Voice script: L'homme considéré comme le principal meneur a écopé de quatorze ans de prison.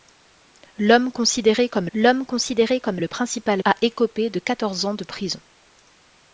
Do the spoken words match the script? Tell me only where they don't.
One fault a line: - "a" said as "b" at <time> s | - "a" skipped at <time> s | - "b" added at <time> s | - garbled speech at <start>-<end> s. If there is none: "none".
- "l'homme considéré comme" added at 1.9 s
- "meneur" skipped at 3.6 s